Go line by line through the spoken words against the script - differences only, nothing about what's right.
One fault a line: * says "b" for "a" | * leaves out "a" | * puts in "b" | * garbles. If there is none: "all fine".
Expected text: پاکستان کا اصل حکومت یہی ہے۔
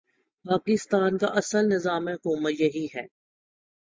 * puts in "نظام"